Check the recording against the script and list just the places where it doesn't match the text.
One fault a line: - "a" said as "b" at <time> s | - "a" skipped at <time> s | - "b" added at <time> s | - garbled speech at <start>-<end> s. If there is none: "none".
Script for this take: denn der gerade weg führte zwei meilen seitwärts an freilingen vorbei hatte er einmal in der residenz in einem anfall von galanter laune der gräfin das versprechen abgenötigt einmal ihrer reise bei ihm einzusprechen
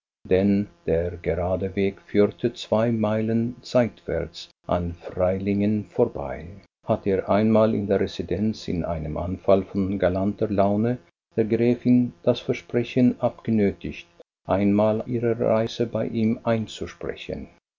none